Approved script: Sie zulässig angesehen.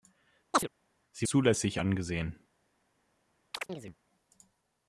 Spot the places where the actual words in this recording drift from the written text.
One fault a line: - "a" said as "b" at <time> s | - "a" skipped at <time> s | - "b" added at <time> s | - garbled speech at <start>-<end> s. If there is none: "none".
none